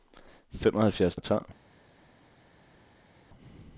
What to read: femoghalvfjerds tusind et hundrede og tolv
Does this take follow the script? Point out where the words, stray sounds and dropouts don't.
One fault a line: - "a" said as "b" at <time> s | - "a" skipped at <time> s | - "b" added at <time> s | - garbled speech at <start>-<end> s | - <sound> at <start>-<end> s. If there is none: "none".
- "tusind et hundrede" skipped at 1.2 s